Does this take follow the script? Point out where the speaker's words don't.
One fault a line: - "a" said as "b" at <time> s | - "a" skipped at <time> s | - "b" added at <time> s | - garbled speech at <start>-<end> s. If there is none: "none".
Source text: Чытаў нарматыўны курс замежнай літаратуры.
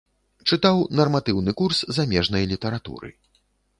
none